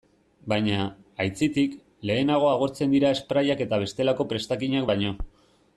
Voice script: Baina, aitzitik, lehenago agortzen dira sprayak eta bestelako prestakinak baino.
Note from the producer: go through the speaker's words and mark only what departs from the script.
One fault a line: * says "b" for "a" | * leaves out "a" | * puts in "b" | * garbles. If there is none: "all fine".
all fine